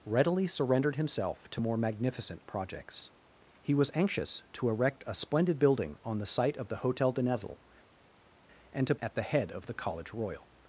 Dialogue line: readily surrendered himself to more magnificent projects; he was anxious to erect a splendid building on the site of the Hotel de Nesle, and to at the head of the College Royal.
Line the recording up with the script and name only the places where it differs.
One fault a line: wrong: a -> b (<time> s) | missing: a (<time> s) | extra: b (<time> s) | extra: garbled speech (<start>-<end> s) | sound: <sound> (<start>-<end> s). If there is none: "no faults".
no faults